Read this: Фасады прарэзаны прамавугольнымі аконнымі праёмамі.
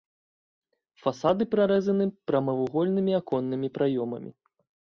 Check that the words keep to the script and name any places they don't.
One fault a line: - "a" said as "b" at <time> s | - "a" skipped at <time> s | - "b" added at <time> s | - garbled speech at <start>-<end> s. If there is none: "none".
none